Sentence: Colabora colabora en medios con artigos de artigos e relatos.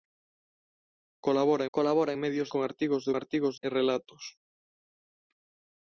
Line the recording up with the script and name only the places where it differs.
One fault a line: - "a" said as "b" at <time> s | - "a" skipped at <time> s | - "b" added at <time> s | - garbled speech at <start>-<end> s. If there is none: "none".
none